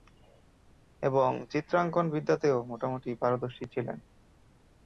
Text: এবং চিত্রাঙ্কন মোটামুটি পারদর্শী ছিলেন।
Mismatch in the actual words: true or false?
true